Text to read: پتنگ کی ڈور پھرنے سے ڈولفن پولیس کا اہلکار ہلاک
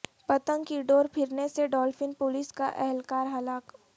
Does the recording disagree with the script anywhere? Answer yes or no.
no